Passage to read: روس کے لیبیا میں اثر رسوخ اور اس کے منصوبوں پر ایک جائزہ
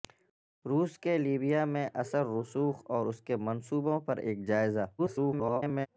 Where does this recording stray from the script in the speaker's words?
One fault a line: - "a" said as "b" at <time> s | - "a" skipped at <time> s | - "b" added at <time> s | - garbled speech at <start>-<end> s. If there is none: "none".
- garbled speech at 5.0-5.9 s